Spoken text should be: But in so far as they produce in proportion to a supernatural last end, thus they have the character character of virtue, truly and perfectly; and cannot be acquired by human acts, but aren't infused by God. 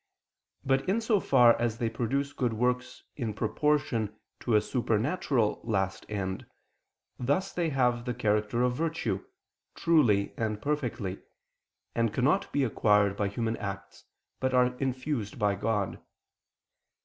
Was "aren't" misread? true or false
true